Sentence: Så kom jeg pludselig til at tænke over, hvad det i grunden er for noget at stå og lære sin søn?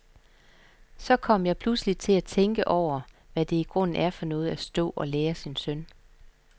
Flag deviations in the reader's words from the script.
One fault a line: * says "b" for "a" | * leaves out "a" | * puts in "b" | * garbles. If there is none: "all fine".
all fine